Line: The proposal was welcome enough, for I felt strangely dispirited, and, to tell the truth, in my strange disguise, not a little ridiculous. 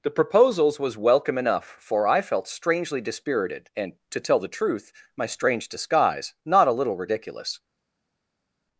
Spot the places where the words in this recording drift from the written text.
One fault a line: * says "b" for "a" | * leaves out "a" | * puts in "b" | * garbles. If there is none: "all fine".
* says "proposals" for "proposal"
* leaves out "in"